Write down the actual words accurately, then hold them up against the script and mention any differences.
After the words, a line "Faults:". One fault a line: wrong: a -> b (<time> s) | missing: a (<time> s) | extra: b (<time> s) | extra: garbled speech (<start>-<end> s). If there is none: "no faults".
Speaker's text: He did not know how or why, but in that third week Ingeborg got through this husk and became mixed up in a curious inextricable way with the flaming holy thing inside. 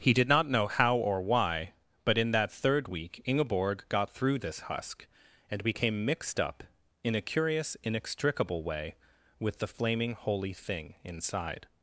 He did not know how or why, but in that third week Ingeborg got through this husk and became mixed up in a curious inextricable way with the flaming holy thing inside.
Faults:
no faults